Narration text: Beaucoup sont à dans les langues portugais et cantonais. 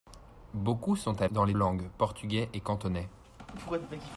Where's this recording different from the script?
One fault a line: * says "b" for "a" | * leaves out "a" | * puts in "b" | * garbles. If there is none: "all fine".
all fine